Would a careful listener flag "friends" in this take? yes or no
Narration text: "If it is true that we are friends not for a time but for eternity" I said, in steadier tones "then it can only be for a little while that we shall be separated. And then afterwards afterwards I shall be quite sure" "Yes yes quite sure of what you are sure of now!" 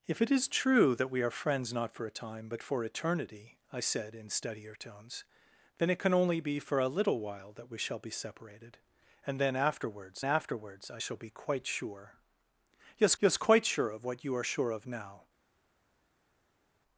no